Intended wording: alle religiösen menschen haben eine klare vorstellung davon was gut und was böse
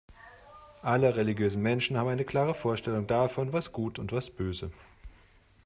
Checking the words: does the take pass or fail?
pass